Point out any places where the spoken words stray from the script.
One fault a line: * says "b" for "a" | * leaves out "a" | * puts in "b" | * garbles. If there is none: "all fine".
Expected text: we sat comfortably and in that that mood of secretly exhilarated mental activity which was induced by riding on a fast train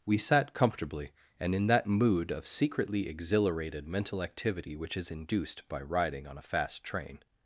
* leaves out "that"
* says "is" for "was"